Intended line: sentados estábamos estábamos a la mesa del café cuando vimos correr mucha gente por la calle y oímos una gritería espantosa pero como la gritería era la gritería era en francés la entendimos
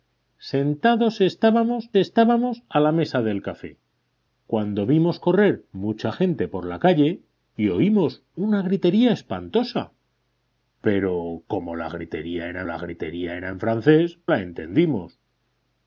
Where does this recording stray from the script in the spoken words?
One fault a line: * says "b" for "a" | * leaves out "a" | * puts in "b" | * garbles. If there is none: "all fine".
all fine